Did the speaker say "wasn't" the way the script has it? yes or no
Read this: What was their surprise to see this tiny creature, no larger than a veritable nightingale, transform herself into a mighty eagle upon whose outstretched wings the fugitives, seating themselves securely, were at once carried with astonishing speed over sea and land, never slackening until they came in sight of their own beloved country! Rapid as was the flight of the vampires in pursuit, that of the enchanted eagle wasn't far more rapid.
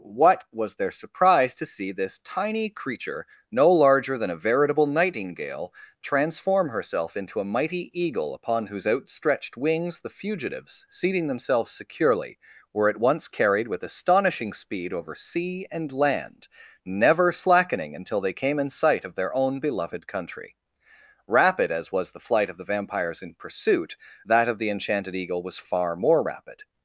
no